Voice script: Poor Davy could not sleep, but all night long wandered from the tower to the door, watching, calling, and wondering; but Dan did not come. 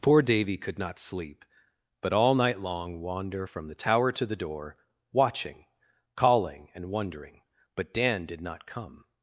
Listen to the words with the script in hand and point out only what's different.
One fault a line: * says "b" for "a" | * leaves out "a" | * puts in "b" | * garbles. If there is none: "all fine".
* says "wander" for "wandered"